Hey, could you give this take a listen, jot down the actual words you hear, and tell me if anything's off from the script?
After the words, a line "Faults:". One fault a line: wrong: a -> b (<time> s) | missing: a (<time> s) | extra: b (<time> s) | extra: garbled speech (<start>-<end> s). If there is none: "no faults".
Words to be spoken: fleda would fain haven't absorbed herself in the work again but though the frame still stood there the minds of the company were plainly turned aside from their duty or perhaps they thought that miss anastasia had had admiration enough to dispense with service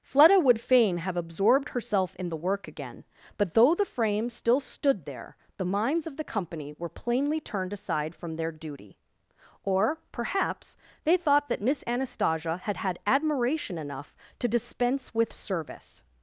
fleda would fain have absorbed herself in the work again but though the frame still stood there the minds of the company were plainly turned aside from their duty or perhaps they thought that miss anastasia had had admiration enough to dispense with service
Faults:
wrong: haven't -> have (1.0 s)